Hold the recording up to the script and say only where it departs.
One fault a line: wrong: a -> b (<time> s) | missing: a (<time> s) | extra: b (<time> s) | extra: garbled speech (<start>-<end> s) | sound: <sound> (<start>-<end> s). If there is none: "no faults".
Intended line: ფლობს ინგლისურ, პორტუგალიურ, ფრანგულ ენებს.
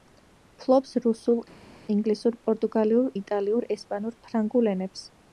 extra: რუსულ (1.0 s)
extra: იტალიურ ესპანურ (3.2 s)